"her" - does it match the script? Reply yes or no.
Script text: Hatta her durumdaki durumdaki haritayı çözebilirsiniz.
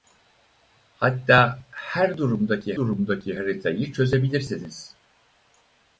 yes